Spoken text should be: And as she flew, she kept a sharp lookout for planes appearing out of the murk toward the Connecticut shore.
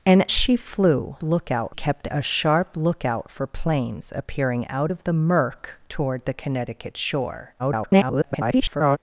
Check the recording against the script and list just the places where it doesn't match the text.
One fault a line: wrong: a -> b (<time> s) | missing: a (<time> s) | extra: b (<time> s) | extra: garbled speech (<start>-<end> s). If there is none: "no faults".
missing: as (0.3 s)
wrong: she -> lookout (1.2 s)
extra: garbled speech (7.6-9.0 s)